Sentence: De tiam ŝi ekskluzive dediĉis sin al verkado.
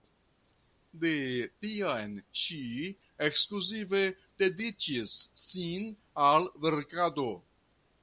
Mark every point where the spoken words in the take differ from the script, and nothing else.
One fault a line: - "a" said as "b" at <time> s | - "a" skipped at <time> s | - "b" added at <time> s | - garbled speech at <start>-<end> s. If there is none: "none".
none